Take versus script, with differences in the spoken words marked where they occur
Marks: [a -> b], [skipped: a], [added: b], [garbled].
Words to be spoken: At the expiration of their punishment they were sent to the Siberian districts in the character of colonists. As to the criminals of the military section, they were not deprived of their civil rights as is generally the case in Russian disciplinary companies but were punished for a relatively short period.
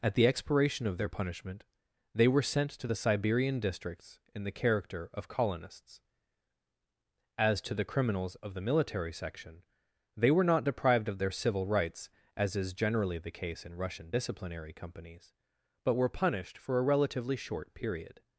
At the expiration of their punishment they were sent to the Siberian districts in the character of colonists. As to the criminals of the military section, they were not deprived of their civil rights as is generally the case in Russian disciplinary companies but were punished for a relatively short period.